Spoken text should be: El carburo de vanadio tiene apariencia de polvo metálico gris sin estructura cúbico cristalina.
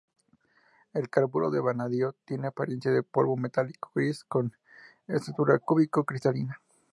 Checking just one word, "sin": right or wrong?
wrong